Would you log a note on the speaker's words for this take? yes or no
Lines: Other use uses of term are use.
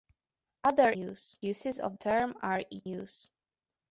no